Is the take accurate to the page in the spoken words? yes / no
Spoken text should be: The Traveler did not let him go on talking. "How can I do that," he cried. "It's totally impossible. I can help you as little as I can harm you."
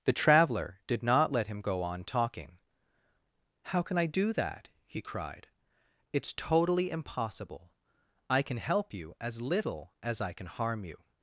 yes